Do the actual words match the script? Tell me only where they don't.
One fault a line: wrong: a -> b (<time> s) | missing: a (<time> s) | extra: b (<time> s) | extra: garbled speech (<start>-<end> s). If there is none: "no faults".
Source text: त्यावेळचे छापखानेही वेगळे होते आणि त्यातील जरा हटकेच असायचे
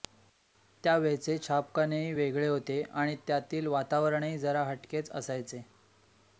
extra: वातावरणही (3.7 s)